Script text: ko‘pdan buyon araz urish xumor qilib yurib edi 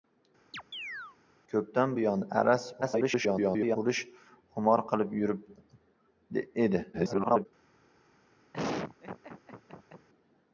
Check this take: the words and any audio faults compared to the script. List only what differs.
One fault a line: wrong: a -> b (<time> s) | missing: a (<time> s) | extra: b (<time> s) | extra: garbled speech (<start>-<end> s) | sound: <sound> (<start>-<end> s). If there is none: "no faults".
sound: chirp (0.5-1.2 s)
extra: garbled speech (2.8-3.8 s)
extra: garbled speech (6.9-7.5 s)
sound: laugh (8.5-10.1 s)